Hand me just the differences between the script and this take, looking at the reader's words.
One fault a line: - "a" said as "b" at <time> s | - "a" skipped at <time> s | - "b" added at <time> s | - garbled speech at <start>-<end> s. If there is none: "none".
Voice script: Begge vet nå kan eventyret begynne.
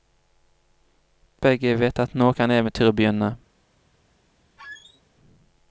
- "at" added at 2.0 s